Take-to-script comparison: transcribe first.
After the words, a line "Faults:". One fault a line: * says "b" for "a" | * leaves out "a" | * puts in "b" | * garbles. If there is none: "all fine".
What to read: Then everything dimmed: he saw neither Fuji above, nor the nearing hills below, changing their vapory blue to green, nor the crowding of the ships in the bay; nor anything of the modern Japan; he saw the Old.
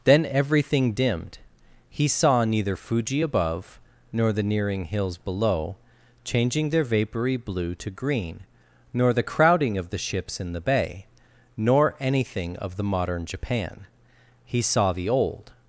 Then everything dimmed: he saw neither Fuji above, nor the nearing hills below, changing their vapory blue to green, nor the crowding of the ships in the bay; nor anything of the modern Japan; he saw the Old.
Faults:
all fine